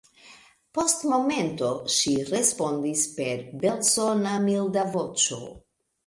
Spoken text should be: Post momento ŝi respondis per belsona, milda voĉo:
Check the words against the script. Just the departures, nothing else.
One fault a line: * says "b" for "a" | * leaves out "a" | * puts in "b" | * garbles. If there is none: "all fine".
all fine